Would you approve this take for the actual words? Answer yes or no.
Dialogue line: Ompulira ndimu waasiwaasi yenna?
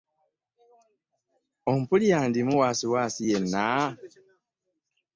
yes